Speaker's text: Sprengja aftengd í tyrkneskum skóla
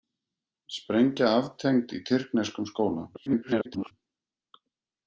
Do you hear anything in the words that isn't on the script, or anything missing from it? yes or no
yes